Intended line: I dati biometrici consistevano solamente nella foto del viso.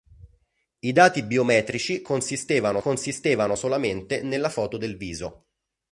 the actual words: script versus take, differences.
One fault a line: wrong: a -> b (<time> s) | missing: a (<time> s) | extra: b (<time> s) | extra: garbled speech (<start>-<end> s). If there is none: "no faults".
extra: consistevano (2.8 s)